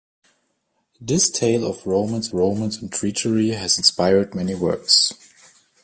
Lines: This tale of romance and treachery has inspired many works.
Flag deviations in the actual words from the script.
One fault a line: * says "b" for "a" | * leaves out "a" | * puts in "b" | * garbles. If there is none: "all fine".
* puts in "romance"